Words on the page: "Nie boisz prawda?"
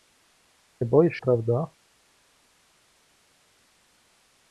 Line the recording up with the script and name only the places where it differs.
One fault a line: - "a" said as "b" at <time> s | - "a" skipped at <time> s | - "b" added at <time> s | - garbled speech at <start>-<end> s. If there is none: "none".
none